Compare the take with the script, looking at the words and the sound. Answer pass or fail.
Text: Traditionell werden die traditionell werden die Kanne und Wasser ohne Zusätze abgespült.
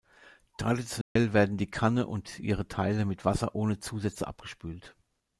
fail